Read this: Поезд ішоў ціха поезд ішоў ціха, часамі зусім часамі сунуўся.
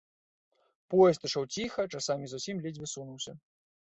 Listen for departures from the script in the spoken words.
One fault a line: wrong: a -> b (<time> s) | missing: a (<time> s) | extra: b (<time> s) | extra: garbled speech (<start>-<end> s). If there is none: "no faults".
missing: поезд ішоў ціха (1.9 s)
wrong: часамі -> ледзьве (2.6 s)